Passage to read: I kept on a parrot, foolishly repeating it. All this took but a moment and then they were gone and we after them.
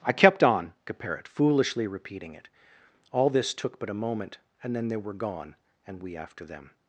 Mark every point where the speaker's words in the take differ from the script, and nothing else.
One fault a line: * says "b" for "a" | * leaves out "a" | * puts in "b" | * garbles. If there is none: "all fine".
all fine